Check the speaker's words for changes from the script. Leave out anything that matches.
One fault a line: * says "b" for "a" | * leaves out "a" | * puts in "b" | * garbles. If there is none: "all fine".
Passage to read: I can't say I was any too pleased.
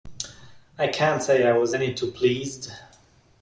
all fine